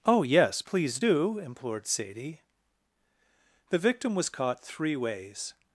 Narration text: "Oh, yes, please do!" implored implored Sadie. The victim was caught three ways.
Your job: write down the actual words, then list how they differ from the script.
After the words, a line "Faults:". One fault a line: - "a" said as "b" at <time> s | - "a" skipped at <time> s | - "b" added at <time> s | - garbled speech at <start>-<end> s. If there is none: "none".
"Oh, yes, please do!" implored Sadie. The victim was caught three ways.
Faults:
- "implored" skipped at 1.9 s